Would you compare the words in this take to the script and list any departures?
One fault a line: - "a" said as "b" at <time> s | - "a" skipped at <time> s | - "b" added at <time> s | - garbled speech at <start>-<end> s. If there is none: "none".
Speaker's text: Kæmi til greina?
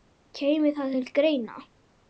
- "það" added at 0.8 s